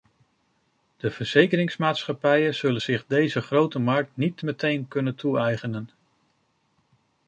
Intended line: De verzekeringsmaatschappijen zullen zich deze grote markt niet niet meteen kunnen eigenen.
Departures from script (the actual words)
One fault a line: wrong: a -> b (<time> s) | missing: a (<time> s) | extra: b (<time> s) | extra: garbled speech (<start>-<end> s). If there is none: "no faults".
missing: niet (4.4 s)
extra: toe (5.2 s)